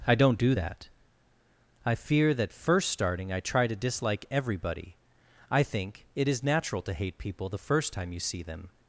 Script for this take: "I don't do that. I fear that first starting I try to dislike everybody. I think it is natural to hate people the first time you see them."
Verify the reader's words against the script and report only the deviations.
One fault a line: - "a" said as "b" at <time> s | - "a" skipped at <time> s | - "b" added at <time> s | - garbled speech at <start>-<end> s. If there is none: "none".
none